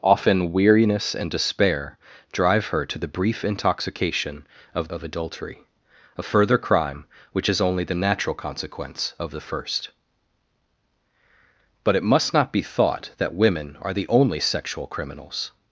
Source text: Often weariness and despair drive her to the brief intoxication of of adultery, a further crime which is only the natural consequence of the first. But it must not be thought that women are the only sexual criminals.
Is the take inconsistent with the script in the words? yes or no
no